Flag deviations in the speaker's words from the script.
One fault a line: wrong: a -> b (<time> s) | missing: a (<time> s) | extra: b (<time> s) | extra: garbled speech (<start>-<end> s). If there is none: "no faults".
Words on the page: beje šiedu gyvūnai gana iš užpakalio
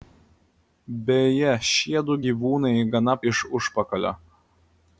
no faults